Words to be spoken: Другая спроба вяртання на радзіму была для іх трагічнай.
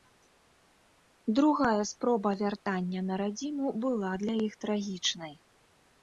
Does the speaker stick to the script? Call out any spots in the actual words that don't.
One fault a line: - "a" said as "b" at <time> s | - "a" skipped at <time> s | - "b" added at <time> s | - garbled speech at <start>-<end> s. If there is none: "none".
none